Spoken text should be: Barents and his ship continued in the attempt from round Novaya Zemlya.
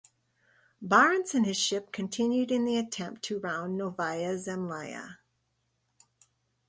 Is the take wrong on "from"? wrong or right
wrong